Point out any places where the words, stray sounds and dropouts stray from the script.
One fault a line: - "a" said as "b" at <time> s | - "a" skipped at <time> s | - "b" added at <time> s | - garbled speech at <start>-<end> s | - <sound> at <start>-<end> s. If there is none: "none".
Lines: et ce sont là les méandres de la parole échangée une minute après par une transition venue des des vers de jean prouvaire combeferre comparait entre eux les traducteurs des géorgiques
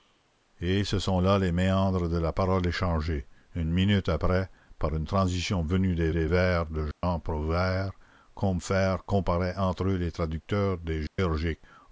- dropout at 6.9-7.0 s
- dropout at 11.1-11.2 s